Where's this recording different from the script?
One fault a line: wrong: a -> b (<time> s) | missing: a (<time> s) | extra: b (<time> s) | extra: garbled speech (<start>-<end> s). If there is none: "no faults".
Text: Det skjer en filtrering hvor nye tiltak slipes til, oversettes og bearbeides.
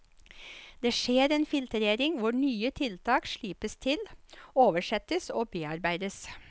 no faults